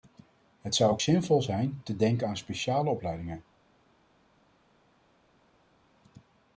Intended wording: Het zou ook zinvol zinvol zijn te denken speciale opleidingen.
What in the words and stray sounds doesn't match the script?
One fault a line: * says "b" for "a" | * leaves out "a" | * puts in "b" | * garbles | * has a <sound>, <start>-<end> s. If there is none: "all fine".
* leaves out "zinvol"
* puts in "aan"